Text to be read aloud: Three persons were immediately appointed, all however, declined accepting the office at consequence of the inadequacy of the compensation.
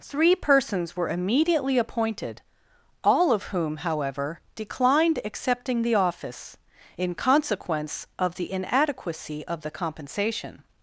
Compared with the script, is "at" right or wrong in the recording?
wrong